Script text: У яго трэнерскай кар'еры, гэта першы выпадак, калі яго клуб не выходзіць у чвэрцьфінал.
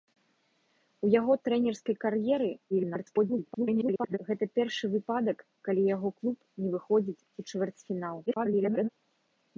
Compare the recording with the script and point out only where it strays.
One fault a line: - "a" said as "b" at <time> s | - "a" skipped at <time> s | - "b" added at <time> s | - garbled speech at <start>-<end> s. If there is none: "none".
- garbled speech at 2.7-4.2 s
- garbled speech at 8.3-8.9 s